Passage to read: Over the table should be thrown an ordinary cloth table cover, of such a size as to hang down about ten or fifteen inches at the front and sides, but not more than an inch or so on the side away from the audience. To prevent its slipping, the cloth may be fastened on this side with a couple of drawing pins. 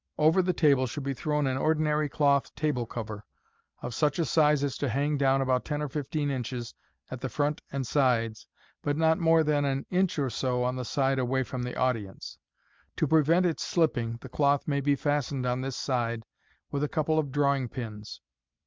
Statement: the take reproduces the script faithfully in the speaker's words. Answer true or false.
true